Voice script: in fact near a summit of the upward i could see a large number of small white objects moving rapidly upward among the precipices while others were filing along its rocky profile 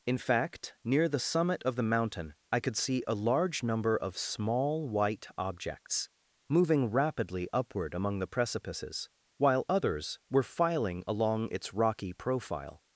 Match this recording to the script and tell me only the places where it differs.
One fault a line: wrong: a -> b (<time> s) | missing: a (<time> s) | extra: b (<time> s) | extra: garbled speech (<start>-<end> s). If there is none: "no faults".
wrong: a -> the (1.1 s)
wrong: upward -> mountain (1.8 s)